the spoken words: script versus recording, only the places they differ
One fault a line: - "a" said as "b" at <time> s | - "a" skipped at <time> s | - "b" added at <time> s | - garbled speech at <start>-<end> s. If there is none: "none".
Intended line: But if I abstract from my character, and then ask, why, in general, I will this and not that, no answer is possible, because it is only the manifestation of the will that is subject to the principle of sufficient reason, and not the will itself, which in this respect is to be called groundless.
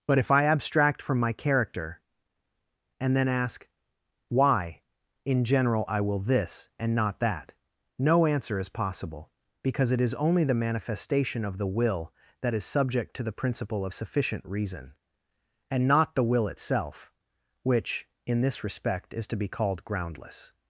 none